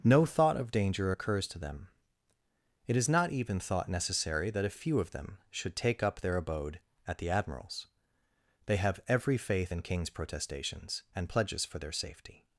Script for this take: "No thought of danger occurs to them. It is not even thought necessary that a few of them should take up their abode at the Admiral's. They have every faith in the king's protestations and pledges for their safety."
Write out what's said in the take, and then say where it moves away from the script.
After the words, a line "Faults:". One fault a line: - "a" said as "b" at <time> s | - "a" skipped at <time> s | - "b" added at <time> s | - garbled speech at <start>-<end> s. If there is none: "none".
"No thought of danger occurs to them. It is not even thought necessary that a few of them should take up their abode at the Admiral's. They have every faith in king's protestations and pledges for their safety."
Faults:
- "the" skipped at 9.8 s